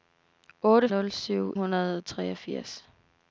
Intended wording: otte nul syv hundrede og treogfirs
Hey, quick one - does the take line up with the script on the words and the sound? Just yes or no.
yes